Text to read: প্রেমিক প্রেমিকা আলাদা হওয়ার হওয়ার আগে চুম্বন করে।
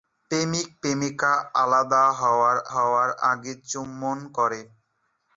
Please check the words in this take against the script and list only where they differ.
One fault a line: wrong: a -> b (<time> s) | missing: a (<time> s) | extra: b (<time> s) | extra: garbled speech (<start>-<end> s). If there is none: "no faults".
no faults